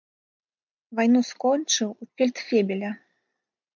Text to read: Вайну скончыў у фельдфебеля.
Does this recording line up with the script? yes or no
yes